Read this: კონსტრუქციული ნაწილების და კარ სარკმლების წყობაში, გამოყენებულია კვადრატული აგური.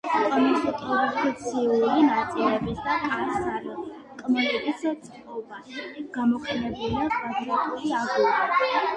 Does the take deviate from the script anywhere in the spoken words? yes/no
no